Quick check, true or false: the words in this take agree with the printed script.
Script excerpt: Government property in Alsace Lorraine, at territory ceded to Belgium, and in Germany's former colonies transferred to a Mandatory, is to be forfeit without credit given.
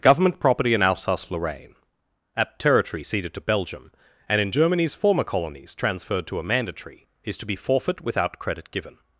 true